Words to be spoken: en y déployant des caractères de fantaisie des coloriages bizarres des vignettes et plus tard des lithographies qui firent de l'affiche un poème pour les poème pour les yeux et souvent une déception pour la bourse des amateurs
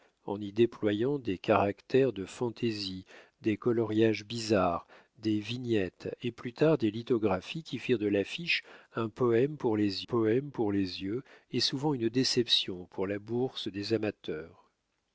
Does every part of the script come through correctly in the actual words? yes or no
yes